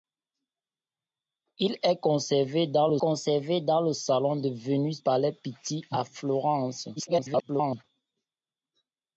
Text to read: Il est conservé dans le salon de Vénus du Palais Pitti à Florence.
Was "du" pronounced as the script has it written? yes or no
no